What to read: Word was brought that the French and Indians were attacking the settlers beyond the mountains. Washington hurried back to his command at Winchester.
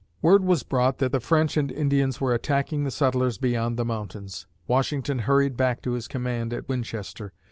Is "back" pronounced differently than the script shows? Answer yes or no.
no